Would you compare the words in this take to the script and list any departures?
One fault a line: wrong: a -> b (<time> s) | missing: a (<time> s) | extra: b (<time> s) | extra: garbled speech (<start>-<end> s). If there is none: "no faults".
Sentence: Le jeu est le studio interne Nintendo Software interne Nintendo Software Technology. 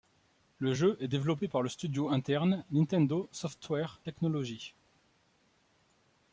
extra: développé par (1.1 s)
missing: interne Nintendo Software (4.0 s)